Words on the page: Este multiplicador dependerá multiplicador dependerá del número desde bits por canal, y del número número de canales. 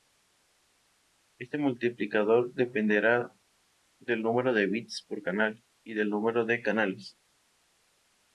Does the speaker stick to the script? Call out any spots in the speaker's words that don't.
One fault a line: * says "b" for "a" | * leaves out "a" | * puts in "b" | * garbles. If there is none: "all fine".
* leaves out "multiplicador dependerá"
* says "de" for "desde"
* leaves out "número"